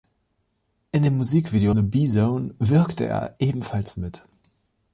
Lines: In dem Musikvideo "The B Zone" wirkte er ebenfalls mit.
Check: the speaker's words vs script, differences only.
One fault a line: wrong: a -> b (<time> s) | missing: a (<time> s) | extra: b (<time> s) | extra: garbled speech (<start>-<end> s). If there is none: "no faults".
no faults